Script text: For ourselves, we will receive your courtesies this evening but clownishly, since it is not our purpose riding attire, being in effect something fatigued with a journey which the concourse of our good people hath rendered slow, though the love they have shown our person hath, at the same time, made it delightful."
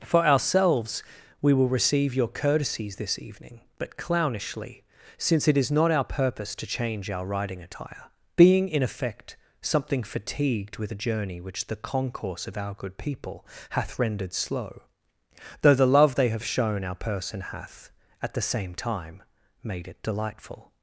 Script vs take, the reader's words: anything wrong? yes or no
yes